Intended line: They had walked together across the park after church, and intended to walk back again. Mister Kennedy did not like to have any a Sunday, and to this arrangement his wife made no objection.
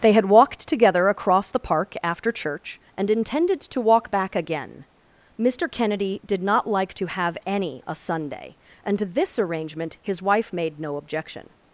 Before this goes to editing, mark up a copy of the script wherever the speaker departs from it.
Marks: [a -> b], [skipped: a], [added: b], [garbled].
They had walked together across the park after church, and intended to walk back again. Mister Kennedy did not like to have any a Sunday, and to this arrangement his wife made no objection.